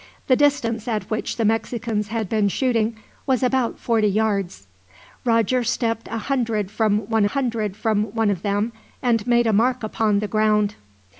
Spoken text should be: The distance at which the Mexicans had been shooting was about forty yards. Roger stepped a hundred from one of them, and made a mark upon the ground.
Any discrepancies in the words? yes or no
yes